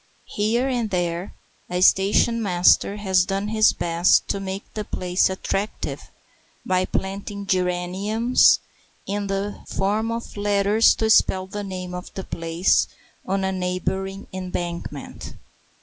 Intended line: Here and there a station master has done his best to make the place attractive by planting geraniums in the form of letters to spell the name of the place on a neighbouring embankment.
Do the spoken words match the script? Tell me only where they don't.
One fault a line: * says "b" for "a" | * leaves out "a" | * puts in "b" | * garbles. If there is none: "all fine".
all fine